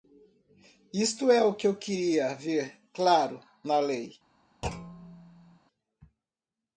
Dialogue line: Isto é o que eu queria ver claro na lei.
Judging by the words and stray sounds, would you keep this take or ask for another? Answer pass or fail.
fail